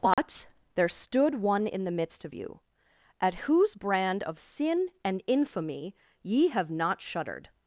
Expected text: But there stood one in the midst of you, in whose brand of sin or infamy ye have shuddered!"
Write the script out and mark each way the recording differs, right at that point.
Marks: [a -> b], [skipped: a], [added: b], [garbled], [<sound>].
But [dropout] there stood one in the midst of you, [in -> at] whose brand of sin [or -> and] infamy ye have [added: not] shuddered!"